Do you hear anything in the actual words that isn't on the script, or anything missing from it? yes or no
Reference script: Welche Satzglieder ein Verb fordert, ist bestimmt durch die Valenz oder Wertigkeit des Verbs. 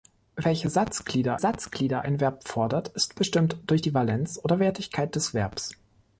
yes